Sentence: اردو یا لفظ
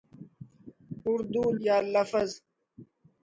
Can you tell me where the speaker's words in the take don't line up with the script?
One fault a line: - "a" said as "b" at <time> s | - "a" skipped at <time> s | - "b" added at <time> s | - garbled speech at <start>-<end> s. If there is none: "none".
none